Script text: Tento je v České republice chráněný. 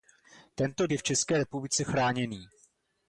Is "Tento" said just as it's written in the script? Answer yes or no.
yes